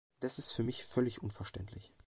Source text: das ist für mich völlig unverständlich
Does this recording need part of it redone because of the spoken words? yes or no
no